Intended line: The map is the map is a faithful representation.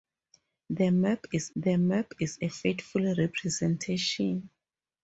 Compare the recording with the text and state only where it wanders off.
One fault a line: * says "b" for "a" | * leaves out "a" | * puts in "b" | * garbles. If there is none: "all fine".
all fine